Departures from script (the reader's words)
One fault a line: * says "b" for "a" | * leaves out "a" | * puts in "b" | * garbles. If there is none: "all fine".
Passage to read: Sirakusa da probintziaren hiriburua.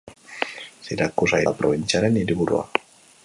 all fine